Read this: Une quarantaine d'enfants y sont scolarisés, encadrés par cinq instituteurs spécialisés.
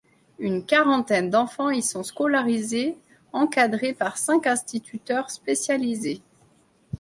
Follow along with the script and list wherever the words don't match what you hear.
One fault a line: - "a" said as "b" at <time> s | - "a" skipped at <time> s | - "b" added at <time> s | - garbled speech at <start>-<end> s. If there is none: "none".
none